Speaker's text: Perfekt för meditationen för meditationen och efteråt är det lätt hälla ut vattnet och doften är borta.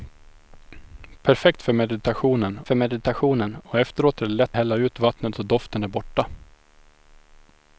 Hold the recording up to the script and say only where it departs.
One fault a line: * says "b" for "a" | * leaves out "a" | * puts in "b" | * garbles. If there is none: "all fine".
all fine